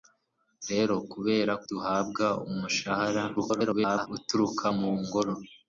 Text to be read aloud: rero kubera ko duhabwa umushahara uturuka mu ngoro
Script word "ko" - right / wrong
wrong